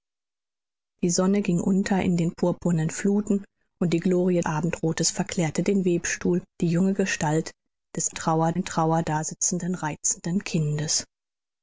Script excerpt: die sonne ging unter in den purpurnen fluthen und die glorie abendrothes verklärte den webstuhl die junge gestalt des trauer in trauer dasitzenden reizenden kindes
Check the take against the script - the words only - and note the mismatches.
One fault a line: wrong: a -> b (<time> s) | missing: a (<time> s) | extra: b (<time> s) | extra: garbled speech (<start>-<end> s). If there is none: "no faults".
no faults